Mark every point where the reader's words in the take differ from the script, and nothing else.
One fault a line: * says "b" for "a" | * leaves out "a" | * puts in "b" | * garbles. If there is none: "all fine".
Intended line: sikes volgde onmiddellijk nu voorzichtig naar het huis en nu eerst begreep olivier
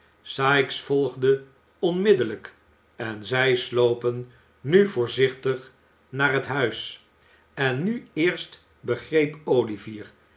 * puts in "en zij slopen"